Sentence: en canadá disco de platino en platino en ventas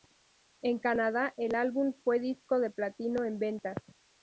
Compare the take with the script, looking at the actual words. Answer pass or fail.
fail